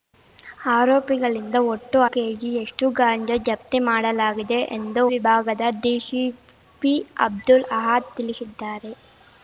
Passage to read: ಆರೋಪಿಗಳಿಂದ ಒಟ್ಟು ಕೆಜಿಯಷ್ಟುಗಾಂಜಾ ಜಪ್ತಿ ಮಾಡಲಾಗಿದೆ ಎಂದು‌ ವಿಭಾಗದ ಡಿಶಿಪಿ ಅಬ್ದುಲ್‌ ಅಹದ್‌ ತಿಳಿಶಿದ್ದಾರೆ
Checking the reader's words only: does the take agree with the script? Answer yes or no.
yes